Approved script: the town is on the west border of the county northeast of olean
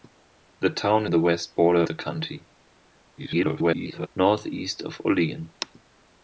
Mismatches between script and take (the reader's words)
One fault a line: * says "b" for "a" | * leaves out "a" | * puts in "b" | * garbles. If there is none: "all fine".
* leaves out "is on"
* leaves out "of"
* garbles